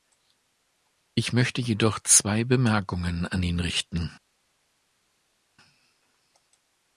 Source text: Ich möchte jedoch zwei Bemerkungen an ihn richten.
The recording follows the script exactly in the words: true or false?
true